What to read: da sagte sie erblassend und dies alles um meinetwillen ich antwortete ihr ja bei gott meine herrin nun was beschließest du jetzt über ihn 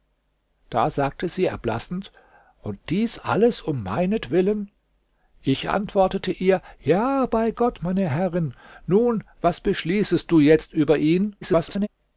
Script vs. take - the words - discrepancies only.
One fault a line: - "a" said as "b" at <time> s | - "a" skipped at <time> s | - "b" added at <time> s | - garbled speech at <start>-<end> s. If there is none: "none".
- garbled speech at 11.4-11.9 s